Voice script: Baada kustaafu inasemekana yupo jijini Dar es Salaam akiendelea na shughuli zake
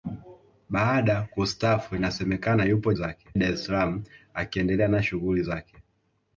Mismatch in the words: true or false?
true